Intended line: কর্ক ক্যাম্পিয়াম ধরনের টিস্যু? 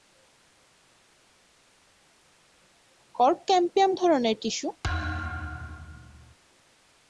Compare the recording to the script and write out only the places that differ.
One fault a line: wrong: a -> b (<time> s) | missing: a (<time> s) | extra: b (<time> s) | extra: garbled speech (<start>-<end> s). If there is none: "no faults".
no faults